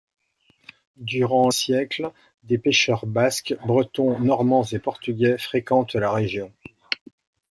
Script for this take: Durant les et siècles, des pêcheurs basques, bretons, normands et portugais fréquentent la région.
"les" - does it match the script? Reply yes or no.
no